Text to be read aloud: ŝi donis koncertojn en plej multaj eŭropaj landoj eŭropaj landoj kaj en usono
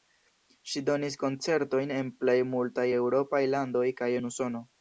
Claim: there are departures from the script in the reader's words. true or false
true